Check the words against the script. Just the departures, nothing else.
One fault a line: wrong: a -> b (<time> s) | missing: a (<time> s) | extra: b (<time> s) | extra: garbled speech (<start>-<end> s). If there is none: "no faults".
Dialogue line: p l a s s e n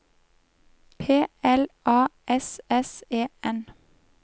no faults